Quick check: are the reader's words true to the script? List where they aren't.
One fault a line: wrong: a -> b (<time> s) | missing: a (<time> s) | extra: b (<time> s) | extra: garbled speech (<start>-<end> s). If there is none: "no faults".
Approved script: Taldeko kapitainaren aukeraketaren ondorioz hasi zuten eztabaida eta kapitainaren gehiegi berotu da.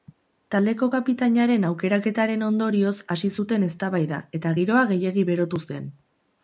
wrong: kapitainaren -> giroa (4.6 s)
wrong: da -> zen (5.7 s)